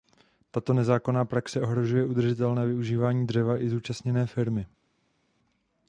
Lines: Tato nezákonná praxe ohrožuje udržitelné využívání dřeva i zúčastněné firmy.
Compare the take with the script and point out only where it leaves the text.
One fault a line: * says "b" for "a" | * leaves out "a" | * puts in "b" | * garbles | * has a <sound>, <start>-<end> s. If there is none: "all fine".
all fine